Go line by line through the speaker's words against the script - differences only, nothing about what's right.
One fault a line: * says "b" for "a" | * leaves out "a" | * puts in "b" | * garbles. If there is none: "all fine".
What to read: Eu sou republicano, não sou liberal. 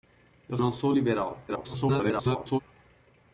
* leaves out "sou republicano"
* garbles